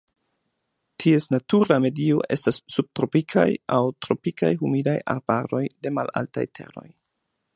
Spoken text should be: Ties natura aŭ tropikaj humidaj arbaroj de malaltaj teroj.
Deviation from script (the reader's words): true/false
true